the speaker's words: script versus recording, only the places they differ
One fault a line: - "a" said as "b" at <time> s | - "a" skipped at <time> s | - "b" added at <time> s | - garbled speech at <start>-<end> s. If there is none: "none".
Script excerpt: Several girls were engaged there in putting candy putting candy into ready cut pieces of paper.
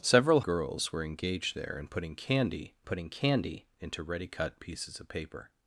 none